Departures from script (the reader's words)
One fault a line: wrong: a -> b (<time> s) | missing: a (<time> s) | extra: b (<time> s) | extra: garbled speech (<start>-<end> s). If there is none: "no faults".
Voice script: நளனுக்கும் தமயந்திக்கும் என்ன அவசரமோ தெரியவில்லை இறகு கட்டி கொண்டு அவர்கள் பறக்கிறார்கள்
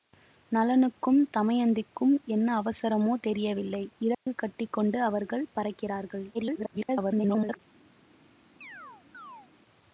extra: garbled speech (6.3-7.6 s)